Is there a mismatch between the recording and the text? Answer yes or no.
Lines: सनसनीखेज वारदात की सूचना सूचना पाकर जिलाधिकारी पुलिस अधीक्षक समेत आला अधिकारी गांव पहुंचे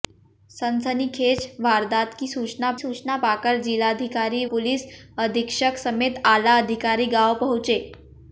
no